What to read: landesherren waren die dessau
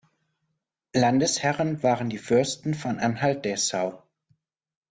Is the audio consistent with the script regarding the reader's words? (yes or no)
no